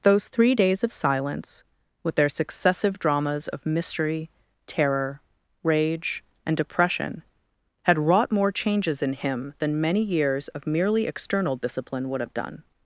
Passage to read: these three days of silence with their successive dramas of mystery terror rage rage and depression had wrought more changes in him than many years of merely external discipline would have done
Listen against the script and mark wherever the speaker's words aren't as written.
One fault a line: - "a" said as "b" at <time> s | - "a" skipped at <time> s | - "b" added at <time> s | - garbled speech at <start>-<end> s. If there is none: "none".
- "these" said as "those" at 0.0 s
- "rage" skipped at 6.2 s